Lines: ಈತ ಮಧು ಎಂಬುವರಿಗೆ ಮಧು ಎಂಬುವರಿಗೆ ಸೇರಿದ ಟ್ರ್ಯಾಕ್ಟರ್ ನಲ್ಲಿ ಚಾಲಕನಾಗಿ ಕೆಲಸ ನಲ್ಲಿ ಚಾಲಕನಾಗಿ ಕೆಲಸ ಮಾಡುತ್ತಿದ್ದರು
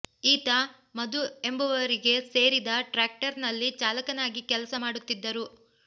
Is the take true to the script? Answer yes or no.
no